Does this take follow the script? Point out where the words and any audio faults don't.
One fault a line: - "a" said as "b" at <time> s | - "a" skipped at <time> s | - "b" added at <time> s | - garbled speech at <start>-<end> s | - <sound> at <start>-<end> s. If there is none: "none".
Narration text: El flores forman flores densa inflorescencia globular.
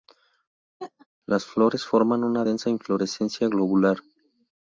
- laugh at 0.8-1.1 s
- "El" said as "Las" at 1.3 s
- "flores" said as "una" at 2.2 s